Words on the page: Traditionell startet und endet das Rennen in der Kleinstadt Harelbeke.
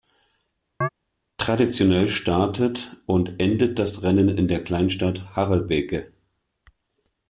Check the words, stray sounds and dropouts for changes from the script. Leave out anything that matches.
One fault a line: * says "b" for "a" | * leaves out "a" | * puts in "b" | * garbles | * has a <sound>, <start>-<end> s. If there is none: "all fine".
* has a chirp, 0.8-0.9 s